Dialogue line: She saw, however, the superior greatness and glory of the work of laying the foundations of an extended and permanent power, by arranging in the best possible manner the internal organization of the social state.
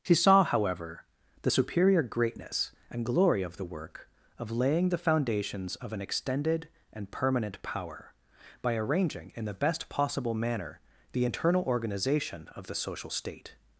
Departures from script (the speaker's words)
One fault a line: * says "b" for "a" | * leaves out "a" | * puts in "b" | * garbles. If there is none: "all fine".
all fine